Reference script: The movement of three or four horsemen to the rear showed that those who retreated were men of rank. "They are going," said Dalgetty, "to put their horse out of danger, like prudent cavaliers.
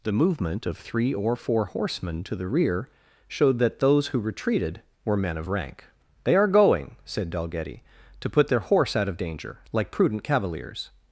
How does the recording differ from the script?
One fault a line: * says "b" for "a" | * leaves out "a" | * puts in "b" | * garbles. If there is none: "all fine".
all fine